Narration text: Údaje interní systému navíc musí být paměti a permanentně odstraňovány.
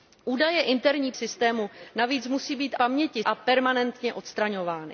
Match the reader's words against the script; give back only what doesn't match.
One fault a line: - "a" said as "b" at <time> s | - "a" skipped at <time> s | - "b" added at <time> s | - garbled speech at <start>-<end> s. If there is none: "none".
none